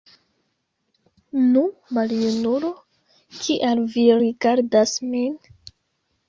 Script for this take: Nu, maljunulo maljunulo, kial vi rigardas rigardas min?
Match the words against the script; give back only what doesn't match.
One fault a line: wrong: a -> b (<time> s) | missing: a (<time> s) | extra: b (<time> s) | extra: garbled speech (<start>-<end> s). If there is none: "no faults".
missing: maljunulo (2.7 s)
missing: rigardas (5.0 s)